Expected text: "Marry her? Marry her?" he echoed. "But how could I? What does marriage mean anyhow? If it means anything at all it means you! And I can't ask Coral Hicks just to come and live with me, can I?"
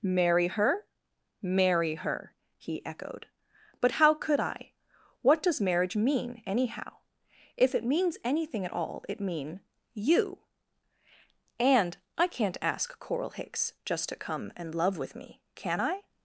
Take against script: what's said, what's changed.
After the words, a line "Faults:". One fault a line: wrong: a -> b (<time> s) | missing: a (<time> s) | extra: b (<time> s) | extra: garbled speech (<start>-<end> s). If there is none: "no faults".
"Marry her? Marry her?" he echoed. "But how could I? What does marriage mean anyhow? If it means anything at all it mean you! And I can't ask Coral Hicks just to come and love with me, can I?"
Faults:
wrong: means -> mean (9.2 s)
wrong: live -> love (14.7 s)